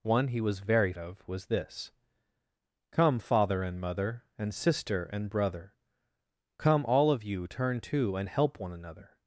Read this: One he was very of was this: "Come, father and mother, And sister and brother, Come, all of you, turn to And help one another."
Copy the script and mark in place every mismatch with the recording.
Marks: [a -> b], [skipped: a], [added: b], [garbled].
One he was very of was this: "Come, father and mother, And sister and brother, Come, all of you, turn to And help one another."